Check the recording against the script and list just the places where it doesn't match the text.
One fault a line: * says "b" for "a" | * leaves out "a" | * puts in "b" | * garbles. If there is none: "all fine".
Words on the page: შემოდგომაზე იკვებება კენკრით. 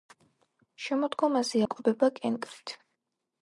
all fine